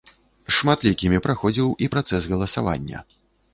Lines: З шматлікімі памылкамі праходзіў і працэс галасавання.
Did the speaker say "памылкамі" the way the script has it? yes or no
no